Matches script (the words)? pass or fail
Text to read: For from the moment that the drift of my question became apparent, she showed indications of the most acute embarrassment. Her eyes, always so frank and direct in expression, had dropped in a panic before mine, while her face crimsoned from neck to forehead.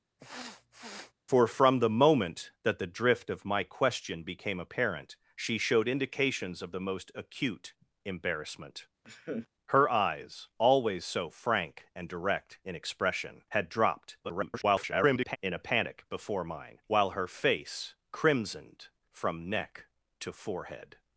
fail